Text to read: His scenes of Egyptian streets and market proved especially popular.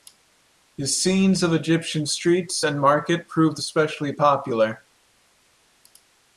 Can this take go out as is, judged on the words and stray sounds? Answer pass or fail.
pass